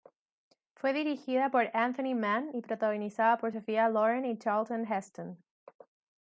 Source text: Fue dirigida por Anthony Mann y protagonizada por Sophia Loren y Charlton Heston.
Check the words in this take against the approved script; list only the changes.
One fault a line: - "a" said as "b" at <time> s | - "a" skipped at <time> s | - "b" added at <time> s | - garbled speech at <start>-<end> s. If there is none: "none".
none